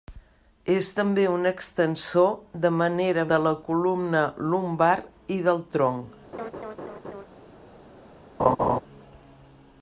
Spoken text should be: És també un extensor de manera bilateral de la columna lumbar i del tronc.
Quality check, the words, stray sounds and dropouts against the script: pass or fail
fail